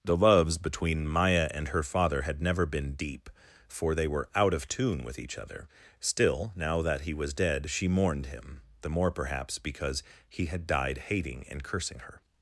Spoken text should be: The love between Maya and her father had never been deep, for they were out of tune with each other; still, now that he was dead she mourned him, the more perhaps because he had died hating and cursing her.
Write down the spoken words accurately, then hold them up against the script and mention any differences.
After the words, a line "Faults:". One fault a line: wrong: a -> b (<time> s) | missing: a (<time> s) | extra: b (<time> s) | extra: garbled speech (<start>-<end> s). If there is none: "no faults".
The loves between Maya and her father had never been deep, for they were out of tune with each other; still, now that he was dead she mourned him, the more perhaps because he had died hating and cursing her.
Faults:
wrong: love -> loves (0.2 s)